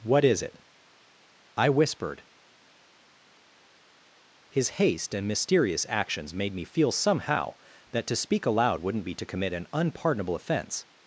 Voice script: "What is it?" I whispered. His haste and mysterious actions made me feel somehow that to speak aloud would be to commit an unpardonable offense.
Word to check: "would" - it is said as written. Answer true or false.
false